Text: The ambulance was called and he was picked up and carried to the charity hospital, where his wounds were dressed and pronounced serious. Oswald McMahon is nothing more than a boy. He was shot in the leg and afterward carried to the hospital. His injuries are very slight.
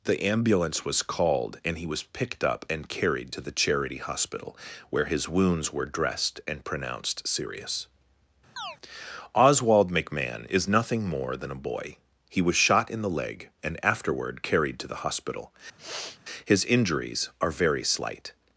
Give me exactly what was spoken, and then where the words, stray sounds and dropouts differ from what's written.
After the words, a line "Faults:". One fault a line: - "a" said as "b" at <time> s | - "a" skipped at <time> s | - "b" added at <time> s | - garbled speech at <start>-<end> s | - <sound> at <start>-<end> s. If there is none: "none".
The ambulance was called and he was picked up and carried to the charity hospital, where his wounds were dressed and pronounced serious. Oswald McMahon is nothing more than a boy. He was shot in the leg and afterward carried to the hospital. His injuries are very slight.
Faults:
- chirp at 8.6-8.8 s
- sniff at 15.8-16.2 s